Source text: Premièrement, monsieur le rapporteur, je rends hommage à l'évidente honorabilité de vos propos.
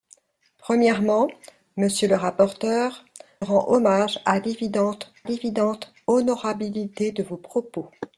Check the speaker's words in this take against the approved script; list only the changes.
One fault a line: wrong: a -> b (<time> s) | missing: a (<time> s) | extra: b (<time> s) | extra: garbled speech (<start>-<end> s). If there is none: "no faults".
missing: je (3.0 s)
extra: l'évidente (5.2 s)